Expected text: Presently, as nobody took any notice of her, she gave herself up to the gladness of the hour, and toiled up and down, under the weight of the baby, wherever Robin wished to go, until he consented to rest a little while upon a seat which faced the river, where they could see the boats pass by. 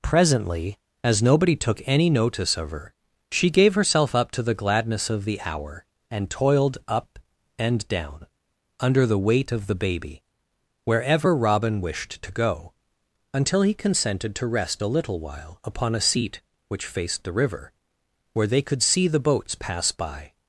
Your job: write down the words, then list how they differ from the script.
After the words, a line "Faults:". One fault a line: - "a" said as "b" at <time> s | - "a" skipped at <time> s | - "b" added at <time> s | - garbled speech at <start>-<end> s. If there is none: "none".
Presently, as nobody took any notice of her, she gave herself up to the gladness of the hour, and toiled up and down, under the weight of the baby, wherever Robin wished to go, until he consented to rest a little while upon a seat which faced the river, where they could see the boats pass by.
Faults:
none